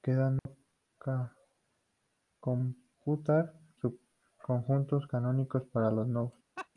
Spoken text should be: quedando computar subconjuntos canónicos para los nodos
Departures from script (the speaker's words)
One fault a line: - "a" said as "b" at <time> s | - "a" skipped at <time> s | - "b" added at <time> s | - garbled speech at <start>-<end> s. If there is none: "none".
none